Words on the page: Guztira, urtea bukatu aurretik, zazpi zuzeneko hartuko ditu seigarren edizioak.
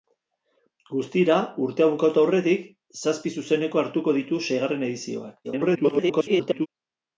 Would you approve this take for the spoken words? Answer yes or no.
no